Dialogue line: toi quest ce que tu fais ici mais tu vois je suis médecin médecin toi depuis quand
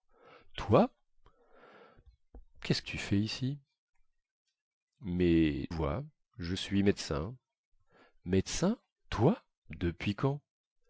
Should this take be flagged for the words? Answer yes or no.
yes